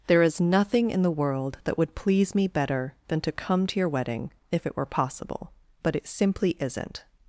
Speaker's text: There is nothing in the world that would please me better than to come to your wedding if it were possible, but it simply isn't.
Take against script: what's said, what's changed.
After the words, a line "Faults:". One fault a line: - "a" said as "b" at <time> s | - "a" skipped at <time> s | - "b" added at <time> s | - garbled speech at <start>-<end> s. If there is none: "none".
There is nothing in the world that would please me better than to come to your wedding if it were possible, but it simply isn't.
Faults:
none